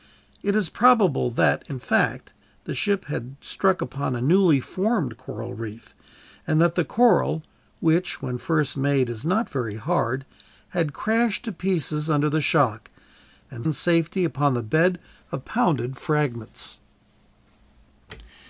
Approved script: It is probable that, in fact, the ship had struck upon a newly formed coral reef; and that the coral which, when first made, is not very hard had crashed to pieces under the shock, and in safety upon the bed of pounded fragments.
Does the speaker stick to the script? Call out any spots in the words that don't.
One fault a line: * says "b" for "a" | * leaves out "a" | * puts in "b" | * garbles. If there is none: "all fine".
all fine